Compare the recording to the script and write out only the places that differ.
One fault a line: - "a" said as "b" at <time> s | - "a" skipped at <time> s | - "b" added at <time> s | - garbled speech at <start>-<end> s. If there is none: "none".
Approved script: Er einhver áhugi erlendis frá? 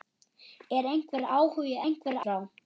- "erlendis" said as "einhver" at 1.9 s